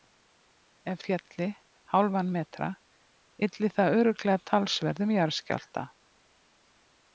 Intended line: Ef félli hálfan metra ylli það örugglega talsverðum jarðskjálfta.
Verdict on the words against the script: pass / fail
pass